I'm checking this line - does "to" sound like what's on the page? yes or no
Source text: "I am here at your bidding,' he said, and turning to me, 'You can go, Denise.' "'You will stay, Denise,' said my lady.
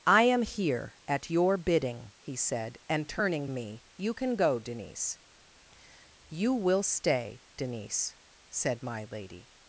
no